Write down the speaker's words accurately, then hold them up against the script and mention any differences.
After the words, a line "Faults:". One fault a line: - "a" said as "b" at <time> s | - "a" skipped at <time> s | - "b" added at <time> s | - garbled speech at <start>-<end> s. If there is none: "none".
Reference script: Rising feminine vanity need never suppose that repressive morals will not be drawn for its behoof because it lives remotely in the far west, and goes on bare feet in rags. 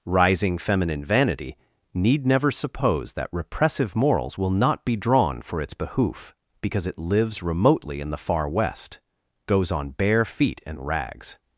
Rising feminine vanity need never suppose that repressive morals will not be drawn for its behoof because it lives remotely in the far west, goes on bare feet and rags.
Faults:
- "and" skipped at 9.0 s
- "in" said as "and" at 10.7 s